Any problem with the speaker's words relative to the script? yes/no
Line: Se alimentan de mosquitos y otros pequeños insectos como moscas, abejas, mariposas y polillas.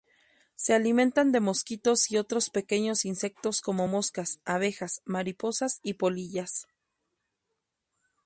no